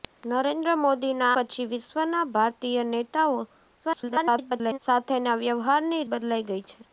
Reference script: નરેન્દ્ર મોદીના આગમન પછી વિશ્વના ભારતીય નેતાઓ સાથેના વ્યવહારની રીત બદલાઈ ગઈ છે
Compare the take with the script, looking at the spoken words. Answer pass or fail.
fail